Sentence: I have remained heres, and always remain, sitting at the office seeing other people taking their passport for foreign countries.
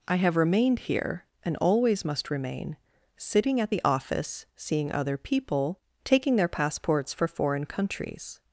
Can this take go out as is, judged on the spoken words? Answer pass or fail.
fail